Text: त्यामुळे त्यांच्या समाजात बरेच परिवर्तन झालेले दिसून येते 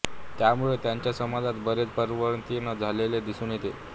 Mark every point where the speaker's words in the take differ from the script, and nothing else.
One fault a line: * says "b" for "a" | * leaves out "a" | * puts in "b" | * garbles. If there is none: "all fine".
all fine